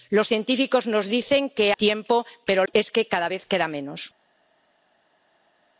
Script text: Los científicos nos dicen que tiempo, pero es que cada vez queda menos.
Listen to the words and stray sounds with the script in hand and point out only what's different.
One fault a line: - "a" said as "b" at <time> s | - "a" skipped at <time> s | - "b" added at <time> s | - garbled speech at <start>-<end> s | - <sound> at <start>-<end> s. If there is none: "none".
none